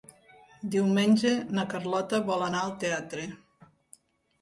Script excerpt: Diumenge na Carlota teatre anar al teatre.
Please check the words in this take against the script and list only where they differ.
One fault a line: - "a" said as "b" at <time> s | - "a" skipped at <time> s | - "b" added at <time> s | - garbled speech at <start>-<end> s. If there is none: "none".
- "teatre" said as "vol" at 2.3 s